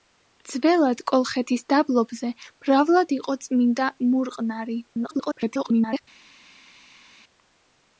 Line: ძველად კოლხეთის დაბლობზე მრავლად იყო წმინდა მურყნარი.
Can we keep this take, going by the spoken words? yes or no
no